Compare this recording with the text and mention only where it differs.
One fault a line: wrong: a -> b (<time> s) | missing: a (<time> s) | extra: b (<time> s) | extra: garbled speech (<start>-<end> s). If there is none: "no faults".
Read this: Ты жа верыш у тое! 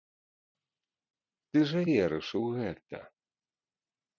wrong: тое -> гэта (2.6 s)